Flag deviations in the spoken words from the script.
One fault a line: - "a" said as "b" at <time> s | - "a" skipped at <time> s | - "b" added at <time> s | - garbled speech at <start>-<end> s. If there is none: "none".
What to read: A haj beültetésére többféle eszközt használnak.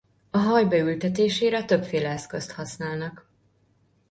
none